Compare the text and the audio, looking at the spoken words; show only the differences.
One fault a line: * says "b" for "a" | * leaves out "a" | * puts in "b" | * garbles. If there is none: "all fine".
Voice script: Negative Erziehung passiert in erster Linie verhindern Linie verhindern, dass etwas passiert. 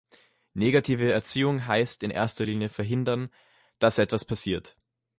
* says "heißt" for "passiert"
* leaves out "Linie verhindern"